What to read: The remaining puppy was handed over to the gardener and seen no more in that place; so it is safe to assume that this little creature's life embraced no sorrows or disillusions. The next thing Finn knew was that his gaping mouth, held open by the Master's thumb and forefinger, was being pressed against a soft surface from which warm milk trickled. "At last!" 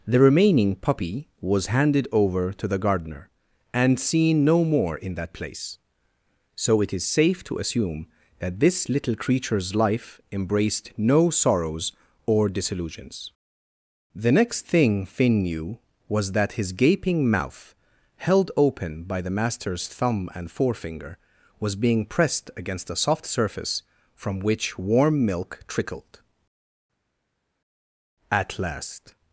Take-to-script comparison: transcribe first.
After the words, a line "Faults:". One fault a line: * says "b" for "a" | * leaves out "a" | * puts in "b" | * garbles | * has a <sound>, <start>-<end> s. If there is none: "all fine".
The remaining puppy was handed over to the gardener and seen no more in that place; so it is safe to assume that this little creature's life embraced no sorrows or disillusions. The next thing Finn knew was that his gaping mouth, held open by the Master's thumb and forefinger, was being pressed against a soft surface from which warm milk trickled. "At last!"
Faults:
all fine